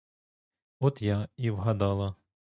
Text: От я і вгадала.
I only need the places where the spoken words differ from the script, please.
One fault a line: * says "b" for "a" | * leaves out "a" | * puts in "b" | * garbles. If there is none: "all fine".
all fine